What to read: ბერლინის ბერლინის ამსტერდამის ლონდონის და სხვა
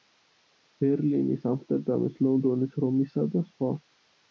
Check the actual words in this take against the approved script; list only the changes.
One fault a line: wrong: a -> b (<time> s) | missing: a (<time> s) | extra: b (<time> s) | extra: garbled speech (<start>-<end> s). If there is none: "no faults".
missing: ბერლინის (1.4 s)
extra: რომისა (2.9 s)